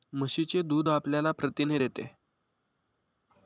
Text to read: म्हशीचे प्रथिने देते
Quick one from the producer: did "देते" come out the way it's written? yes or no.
yes